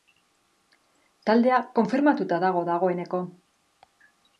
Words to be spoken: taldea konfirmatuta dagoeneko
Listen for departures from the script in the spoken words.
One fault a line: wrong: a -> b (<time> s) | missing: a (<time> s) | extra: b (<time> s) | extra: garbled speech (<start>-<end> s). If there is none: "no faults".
extra: dago (2.5 s)